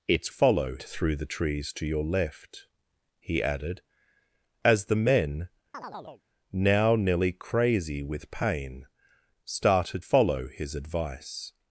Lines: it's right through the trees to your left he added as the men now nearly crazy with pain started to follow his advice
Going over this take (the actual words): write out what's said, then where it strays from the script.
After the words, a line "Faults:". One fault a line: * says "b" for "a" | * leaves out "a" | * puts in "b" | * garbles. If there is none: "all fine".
it's follow through the trees to your left he added as the men now nearly crazy with pain started follow his advice
Faults:
* says "follow" for "right"
* leaves out "to"